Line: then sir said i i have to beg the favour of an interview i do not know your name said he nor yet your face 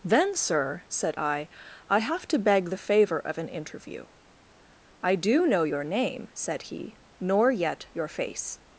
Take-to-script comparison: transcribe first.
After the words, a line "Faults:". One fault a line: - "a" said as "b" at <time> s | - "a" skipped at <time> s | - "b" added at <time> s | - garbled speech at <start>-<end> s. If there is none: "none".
then sir said i i have to beg the favour of an interview i do know your name said he nor yet your face
Faults:
- "not" skipped at 5.5 s